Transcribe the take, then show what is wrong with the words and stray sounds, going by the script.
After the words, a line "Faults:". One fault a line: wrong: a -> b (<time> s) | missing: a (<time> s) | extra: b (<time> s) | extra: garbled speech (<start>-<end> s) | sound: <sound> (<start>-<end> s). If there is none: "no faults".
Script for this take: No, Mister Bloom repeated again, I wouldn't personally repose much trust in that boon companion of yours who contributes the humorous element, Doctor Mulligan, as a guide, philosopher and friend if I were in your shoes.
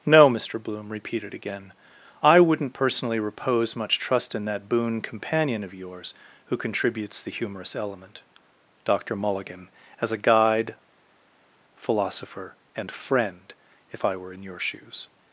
No, Mister Bloom repeated again, I wouldn't personally repose much trust in that boon companion of yours who contributes the humorous element, Doctor Mulligan, as a guide, philosopher and friend if I were in your shoes.
Faults:
no faults